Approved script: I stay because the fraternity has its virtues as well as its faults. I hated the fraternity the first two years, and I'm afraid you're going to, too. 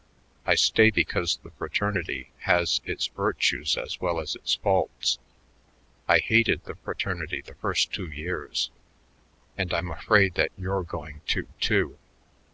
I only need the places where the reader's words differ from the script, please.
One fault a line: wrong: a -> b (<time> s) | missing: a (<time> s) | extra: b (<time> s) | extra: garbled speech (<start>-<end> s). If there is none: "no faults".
extra: that (10.3 s)